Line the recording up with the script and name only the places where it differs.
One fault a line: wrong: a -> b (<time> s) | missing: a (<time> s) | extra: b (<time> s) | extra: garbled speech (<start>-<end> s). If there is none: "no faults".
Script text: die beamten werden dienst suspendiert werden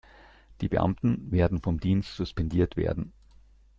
extra: vom (1.6 s)